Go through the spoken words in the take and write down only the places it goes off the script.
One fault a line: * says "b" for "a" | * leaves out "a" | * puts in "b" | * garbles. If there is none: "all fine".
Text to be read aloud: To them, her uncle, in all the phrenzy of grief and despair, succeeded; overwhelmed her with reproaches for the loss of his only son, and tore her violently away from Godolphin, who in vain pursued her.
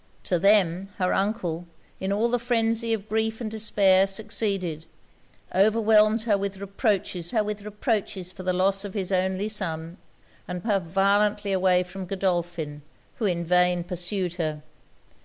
* puts in "her with reproaches"
* leaves out "tore"